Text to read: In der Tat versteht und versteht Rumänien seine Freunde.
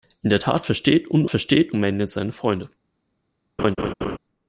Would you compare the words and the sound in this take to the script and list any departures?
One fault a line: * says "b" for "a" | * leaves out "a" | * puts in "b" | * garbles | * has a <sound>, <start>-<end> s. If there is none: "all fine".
* has a laugh, 3.6-4.2 s